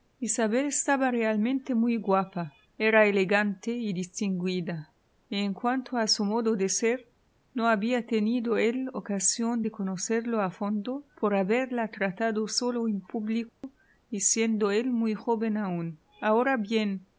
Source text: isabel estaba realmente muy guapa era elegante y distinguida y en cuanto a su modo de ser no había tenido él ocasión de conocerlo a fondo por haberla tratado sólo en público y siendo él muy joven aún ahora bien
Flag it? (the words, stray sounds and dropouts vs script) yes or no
yes